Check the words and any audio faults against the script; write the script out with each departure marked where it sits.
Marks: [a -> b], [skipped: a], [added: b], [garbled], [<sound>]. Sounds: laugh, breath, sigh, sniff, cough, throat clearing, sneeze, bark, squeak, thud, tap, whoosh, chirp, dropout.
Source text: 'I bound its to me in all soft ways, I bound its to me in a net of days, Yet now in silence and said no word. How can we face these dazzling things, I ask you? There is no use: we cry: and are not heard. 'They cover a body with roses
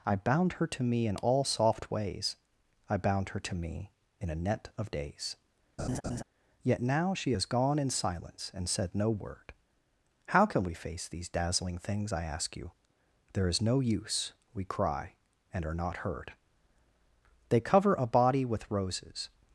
'I bound [its -> her] to me in all soft ways, I bound [its -> her] to me in a net of days, [laugh] Yet now [added: she has gone] in silence and said no word. How can we face these dazzling things, I ask you? There is no use: we cry: and are not heard. 'They cover a body with roses